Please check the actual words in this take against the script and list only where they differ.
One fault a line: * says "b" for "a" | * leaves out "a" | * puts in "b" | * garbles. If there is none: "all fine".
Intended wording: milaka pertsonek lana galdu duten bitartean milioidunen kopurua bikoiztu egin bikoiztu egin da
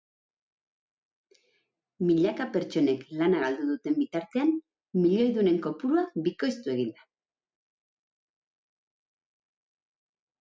* leaves out "bikoiztu egin"